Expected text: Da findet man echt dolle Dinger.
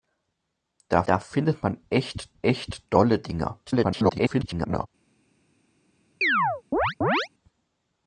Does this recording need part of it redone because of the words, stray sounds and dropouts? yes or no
yes